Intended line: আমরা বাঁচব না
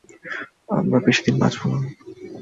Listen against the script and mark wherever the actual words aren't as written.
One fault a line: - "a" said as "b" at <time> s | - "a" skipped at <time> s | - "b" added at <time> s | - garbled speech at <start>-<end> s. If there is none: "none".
- "বেশিদিন" added at 1.1 s